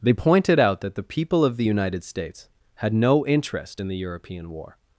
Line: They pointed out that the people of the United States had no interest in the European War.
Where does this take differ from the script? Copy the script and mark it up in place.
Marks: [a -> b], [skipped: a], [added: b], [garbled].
They pointed out that the people of the United States had no interest in the European War.